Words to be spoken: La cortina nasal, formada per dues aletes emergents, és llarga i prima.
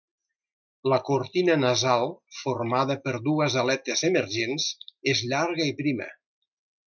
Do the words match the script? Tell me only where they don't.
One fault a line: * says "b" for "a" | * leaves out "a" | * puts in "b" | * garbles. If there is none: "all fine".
all fine